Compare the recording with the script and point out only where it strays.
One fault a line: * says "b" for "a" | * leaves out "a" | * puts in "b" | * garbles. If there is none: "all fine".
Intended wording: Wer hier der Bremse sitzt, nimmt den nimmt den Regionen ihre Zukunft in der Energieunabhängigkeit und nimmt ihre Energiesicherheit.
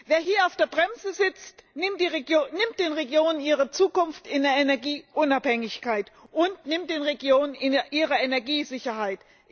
* puts in "auf"
* leaves out "nimmt den"
* puts in "den Regionen"